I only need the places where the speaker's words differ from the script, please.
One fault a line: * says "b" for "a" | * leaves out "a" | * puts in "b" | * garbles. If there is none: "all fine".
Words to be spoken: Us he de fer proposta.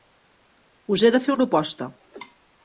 all fine